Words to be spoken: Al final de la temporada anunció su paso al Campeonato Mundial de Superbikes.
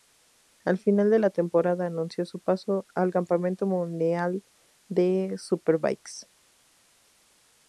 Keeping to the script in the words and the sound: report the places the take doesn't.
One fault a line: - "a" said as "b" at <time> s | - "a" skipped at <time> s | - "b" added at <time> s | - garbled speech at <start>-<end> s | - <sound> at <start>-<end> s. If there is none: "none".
none